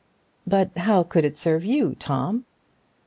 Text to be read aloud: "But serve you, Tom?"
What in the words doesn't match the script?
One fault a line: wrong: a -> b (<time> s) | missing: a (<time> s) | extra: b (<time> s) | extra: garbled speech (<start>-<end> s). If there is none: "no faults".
extra: how could it (0.8 s)